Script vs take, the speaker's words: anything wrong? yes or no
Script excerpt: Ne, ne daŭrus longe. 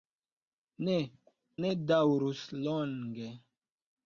no